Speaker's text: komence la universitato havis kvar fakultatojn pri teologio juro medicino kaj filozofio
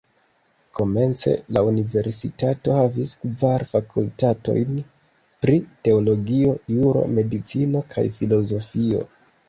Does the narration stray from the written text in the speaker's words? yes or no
no